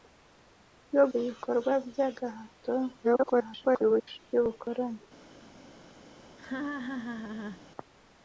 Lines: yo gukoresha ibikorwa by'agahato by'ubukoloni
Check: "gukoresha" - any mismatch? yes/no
yes